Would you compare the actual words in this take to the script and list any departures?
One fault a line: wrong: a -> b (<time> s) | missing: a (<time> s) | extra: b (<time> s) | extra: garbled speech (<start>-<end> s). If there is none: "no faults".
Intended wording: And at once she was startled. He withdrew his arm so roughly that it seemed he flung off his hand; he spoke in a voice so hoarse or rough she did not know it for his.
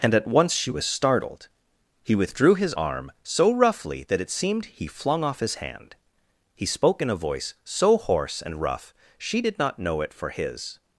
wrong: or -> and (8.4 s)